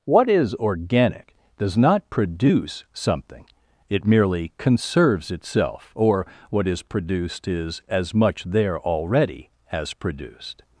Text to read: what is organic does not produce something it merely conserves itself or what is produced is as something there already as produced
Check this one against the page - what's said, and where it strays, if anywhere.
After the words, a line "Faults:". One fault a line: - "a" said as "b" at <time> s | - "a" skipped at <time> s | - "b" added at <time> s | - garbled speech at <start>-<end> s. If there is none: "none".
what is organic does not produce something it merely conserves itself or what is produced is as much there already as produced
Faults:
- "something" said as "much" at 8.1 s